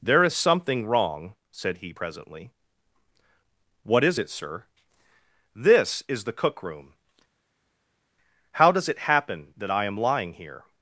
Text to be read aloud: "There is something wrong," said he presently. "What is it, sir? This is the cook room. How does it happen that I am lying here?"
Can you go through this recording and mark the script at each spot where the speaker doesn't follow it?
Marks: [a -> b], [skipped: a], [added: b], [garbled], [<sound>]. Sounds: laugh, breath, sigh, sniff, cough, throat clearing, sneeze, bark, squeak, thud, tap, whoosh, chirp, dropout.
"There is something wrong," said he presently. "What is it, sir? This is the cook room. How does it happen that I am lying here?"